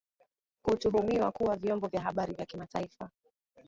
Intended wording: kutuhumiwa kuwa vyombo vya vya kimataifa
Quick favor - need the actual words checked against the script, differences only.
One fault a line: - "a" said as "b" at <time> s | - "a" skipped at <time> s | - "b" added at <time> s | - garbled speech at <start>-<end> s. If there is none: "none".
- "habari" added at 2.0 s